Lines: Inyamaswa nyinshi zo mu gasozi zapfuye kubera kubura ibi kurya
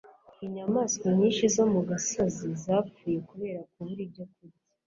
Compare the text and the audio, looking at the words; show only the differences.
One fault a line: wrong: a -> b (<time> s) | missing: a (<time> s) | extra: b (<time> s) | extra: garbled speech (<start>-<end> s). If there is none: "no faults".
wrong: ibi -> ibyo (4.1 s)